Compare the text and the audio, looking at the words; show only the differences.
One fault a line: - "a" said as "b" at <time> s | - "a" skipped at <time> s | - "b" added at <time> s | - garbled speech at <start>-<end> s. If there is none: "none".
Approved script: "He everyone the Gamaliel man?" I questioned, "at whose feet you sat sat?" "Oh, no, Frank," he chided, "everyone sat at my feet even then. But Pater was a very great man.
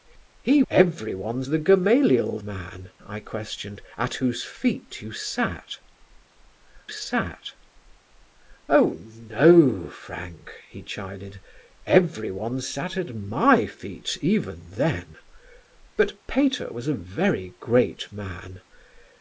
none